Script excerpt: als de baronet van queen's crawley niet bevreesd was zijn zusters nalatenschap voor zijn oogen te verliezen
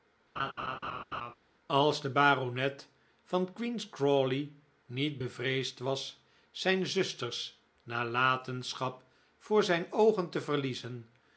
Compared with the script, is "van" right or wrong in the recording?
right